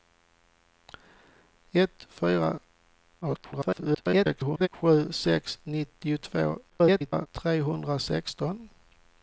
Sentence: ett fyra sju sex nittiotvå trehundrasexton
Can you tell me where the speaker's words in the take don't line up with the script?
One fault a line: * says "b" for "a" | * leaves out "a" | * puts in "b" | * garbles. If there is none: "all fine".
* garbles
* garbles